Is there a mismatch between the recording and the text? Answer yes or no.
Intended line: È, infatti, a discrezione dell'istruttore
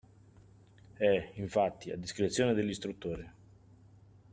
no